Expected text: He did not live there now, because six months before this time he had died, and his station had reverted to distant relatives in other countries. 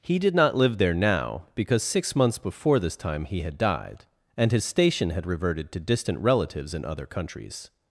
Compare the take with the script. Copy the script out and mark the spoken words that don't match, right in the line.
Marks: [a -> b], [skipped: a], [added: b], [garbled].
He did not live there now, because six months before this time he had died, and his station had reverted to distant relatives in other countries.